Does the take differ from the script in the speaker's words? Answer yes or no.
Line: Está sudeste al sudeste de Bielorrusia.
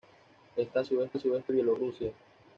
no